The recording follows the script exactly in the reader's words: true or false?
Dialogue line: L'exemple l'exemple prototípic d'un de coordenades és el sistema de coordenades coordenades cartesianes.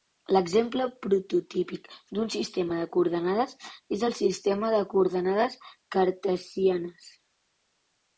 false